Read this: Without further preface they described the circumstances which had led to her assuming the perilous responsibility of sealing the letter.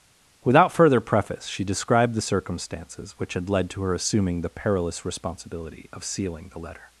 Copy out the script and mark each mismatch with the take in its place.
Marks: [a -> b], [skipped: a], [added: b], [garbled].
Without further preface [they -> she] described the circumstances which had led to her assuming the perilous responsibility of sealing the letter.